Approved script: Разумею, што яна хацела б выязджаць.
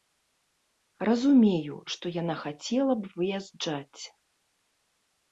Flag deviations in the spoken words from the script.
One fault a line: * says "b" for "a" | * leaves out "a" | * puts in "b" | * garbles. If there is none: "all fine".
all fine